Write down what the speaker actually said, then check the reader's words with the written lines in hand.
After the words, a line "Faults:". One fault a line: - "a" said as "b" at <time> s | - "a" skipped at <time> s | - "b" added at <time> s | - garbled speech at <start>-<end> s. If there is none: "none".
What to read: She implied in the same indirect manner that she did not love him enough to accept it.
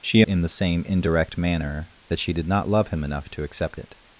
She in the same indirect manner that she did not love him enough to accept it.
Faults:
- "implied" skipped at 0.2 s